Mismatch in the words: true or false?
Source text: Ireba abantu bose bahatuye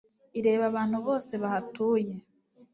false